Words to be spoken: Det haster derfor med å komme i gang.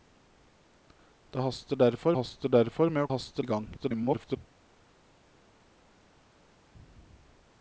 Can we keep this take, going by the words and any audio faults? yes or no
no